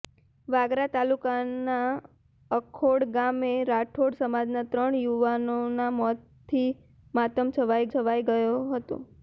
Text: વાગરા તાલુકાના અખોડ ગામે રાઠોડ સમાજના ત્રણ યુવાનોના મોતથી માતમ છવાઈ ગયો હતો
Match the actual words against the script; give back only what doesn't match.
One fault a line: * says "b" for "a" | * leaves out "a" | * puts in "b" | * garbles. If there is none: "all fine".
* puts in "છવાઈ"